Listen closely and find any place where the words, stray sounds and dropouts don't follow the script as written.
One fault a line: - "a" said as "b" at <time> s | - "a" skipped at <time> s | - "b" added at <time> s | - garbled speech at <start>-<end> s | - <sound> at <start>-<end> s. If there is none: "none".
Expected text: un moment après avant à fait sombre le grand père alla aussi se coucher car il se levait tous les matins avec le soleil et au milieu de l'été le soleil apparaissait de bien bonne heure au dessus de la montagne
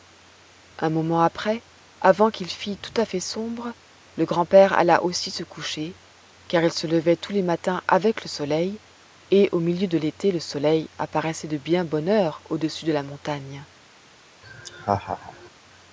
- "qu'il fît tout" added at 2.3 s
- laugh at 14.4-15.5 s